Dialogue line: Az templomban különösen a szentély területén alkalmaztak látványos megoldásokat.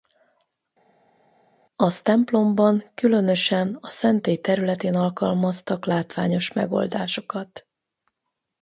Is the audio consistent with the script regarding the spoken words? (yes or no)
yes